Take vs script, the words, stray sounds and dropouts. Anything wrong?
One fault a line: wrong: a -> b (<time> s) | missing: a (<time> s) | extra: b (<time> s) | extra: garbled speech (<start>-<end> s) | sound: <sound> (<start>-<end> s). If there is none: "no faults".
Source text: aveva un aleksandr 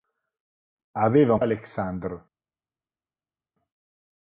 no faults